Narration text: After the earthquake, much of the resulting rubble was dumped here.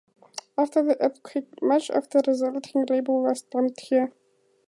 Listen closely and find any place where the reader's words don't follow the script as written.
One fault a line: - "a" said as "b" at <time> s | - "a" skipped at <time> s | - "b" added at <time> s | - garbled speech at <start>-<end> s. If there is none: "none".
none